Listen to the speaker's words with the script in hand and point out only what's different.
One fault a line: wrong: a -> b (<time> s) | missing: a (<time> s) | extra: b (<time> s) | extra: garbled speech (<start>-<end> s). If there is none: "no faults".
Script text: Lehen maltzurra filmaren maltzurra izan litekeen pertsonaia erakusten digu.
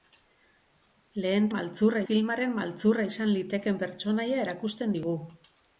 no faults